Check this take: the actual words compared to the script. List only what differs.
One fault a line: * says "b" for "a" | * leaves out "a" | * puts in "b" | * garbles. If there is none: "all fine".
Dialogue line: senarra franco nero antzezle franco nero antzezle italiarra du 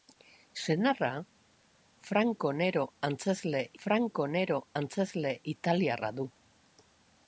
all fine